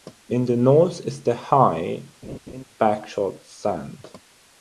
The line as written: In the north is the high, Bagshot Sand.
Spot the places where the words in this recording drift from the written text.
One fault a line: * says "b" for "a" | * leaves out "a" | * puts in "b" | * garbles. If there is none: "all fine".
all fine